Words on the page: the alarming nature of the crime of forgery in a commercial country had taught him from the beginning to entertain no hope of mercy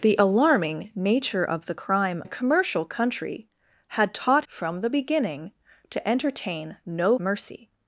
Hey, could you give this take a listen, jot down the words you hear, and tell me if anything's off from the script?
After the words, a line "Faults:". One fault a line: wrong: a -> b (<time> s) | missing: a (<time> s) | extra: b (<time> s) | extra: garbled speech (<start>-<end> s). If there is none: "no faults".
the alarming nature of the crime a commercial country had taught from the beginning to entertain no mercy
Faults:
missing: of forgery in (2.2 s)
missing: him (4.5 s)
missing: hope of (7.2 s)